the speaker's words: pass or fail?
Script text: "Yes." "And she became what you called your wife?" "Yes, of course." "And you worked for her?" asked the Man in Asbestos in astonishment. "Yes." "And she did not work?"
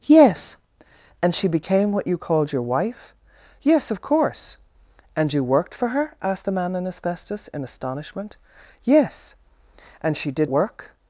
fail